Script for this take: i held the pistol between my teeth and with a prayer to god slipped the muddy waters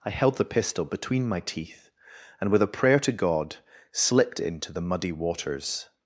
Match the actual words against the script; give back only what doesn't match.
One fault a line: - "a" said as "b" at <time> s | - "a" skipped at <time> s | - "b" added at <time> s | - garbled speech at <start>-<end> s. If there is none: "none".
- "into" added at 4.4 s